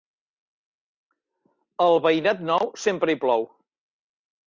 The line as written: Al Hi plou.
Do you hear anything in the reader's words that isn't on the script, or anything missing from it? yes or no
yes